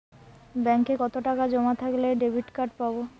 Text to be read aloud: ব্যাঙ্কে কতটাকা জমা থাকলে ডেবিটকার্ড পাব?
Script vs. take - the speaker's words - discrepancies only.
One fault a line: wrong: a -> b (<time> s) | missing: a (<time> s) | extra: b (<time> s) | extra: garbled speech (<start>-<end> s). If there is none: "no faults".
no faults